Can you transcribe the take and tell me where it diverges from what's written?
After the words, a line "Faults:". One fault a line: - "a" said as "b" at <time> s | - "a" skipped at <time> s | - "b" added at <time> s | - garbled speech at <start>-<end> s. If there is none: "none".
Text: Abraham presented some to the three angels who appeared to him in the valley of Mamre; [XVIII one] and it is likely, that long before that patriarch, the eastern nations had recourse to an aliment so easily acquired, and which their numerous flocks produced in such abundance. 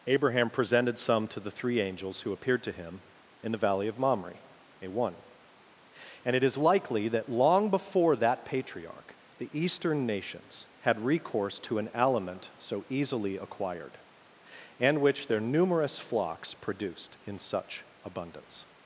Abraham presented some to the three angels who appeared to him in the valley of Mamre; [A one] and it is likely, that long before that patriarch, the eastern nations had recourse to an aliment so easily acquired, and which their numerous flocks produced in such abundance.
Faults:
- "XVIII" said as "A" at 4.8 s